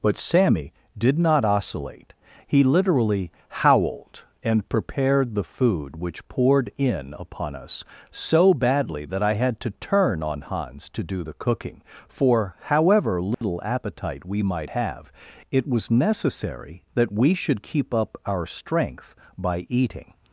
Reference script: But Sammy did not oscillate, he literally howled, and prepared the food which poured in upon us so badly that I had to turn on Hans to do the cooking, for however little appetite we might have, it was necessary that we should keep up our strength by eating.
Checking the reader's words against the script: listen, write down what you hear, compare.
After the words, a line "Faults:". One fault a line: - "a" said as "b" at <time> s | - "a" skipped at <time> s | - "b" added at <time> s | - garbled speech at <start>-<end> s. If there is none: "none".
But Sammy did not oscillate, he literally howled, and prepared the food which poured in upon us so badly that I had to turn on Hans to do the cooking, for however little appetite we might have, it was necessary that we should keep up our strength by eating.
Faults:
none